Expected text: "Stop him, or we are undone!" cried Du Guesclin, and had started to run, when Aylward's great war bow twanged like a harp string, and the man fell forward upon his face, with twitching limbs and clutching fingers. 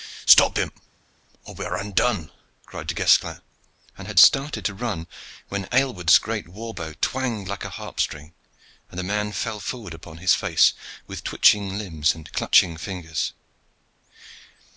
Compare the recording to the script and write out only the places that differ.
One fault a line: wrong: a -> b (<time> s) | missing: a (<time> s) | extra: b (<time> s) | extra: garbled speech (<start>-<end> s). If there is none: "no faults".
no faults